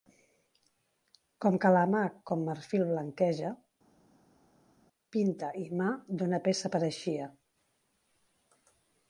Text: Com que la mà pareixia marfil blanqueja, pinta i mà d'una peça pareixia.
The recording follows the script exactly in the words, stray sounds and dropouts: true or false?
false